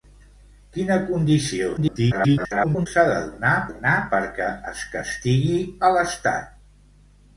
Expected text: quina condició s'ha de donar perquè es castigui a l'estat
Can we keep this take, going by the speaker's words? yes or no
no